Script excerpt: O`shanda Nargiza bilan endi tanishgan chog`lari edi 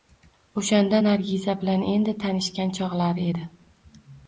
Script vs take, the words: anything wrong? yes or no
no